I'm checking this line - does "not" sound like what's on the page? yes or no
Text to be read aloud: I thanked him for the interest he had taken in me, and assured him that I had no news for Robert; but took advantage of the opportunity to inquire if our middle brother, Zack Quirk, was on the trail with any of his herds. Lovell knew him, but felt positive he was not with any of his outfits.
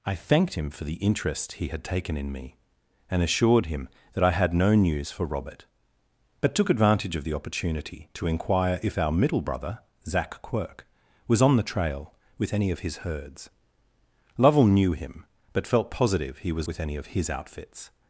no